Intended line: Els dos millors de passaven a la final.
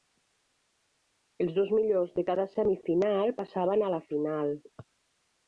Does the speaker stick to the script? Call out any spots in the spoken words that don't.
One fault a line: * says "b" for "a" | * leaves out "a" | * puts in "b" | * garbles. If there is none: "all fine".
* puts in "cada semifinal"